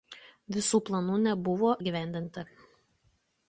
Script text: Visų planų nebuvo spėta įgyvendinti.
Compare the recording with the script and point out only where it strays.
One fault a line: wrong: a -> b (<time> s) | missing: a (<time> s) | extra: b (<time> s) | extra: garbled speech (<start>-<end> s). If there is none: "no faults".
missing: spėta (1.8 s)